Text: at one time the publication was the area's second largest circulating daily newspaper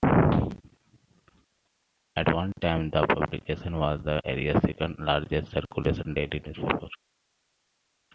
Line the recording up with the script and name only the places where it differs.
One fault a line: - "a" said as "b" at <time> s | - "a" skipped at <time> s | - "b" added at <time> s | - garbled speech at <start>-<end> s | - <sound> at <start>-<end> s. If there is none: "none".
none